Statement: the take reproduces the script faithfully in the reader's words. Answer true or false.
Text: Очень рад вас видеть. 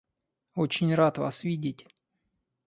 true